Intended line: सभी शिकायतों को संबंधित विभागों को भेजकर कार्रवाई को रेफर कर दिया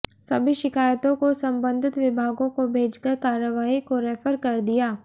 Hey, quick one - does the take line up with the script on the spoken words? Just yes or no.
yes